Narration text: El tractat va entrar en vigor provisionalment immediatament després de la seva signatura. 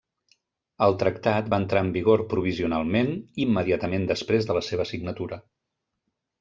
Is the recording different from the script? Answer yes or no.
no